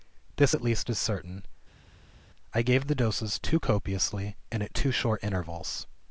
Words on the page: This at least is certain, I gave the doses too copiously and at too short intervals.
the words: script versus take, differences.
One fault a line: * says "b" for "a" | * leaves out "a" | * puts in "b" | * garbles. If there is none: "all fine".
all fine